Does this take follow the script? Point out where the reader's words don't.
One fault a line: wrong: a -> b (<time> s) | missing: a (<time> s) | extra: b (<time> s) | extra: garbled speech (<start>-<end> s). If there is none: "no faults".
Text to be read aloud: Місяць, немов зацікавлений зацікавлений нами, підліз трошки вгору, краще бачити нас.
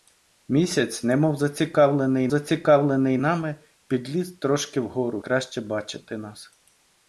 no faults